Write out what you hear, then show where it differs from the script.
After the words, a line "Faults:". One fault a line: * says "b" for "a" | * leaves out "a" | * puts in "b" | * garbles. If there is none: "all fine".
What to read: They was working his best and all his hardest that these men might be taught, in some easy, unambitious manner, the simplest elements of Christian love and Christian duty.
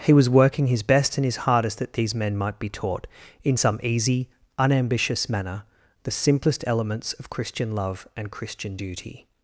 He was working his best and his hardest that these men might be taught, in some easy, unambitious manner, the simplest elements of Christian love and Christian duty.
Faults:
* says "He" for "They"
* leaves out "all"